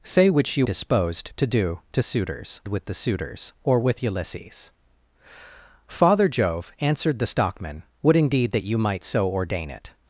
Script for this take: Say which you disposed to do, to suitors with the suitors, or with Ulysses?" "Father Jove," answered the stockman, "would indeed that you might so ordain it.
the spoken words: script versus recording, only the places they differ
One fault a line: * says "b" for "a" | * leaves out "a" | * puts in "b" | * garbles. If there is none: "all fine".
all fine